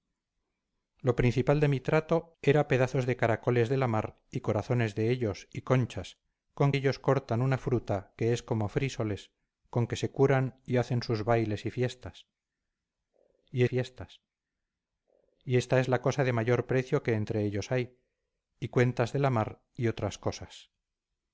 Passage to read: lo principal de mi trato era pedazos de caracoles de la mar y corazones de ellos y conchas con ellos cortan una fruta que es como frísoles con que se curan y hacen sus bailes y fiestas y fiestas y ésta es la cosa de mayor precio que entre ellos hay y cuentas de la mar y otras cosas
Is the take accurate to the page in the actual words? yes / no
yes